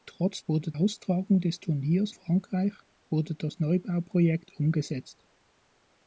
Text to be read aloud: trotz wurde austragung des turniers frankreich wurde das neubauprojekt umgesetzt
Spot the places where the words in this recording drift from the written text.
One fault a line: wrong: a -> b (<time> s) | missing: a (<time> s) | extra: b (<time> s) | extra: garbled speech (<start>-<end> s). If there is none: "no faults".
no faults